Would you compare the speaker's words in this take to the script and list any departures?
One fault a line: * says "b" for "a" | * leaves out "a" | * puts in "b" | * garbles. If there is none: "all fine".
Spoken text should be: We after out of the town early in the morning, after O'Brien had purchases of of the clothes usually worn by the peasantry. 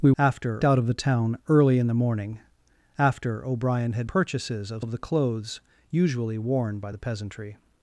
all fine